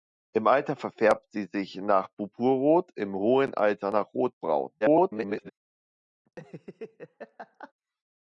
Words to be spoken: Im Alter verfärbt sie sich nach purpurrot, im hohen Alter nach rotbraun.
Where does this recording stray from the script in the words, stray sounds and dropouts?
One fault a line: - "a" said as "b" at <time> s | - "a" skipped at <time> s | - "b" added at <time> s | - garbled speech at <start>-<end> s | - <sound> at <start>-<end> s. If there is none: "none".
- garbled speech at 4.8-5.5 s
- laugh at 6.3-7.7 s